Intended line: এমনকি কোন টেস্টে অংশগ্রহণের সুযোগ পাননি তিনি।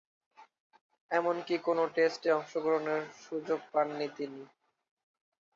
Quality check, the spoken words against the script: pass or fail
pass